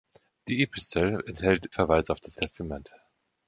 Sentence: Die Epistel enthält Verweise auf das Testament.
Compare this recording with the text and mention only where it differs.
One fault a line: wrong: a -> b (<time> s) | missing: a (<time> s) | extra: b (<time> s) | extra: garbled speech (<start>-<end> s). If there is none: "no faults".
no faults